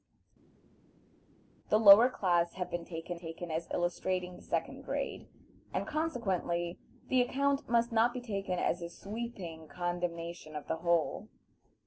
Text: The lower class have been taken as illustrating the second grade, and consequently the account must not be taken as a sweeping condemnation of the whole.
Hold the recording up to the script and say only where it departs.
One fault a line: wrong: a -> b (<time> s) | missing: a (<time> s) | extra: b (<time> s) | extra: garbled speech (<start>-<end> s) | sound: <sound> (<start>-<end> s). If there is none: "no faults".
extra: taken (3.2 s)